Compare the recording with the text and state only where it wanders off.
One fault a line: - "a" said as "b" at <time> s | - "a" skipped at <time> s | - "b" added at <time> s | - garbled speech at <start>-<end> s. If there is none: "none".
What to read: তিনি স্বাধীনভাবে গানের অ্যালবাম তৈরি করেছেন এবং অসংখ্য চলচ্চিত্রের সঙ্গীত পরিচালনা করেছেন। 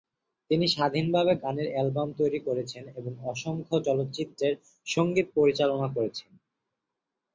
none